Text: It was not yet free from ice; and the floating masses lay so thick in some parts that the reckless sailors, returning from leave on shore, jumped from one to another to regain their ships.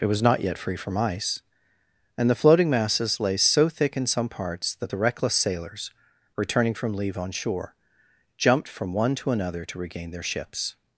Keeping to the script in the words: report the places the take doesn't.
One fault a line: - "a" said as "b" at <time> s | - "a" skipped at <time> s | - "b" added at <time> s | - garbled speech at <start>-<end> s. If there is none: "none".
none